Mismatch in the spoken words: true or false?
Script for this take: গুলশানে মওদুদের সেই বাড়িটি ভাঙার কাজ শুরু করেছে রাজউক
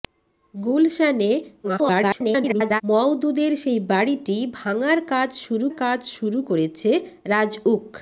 true